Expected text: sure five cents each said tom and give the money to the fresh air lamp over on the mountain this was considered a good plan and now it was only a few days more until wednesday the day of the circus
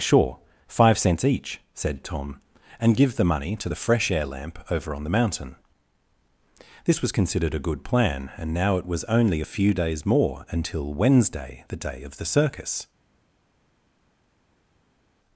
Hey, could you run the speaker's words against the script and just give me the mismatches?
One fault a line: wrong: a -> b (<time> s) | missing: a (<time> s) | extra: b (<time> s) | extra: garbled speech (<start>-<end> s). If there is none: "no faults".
no faults